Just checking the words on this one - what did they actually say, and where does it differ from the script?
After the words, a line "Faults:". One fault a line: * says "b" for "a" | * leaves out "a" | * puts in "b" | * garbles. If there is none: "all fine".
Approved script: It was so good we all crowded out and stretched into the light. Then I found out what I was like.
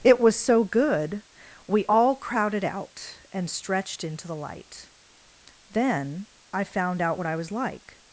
It was so good we all crowded out and stretched into the light. Then I found out what I was like.
Faults:
all fine